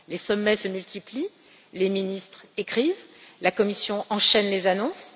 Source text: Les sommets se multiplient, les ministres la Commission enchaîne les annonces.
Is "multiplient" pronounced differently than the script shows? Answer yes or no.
no